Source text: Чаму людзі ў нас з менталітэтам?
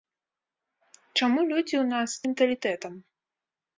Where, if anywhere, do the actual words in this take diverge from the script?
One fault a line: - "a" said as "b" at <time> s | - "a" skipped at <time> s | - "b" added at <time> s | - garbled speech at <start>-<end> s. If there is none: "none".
none